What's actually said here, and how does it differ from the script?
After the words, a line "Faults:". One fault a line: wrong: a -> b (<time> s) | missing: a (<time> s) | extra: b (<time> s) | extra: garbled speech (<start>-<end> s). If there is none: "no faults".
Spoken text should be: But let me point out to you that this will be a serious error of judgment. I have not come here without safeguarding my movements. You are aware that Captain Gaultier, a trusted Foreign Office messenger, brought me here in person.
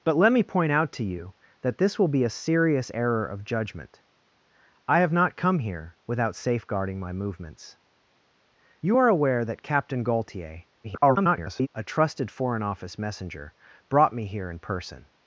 But let me point out to you that this will be a serious error of judgment. I have not come here without safeguarding my movements. You are aware that Captain Gaultier, [garbled] a trusted Foreign Office messenger, brought me here in person.
Faults:
extra: garbled speech (10.8-11.7 s)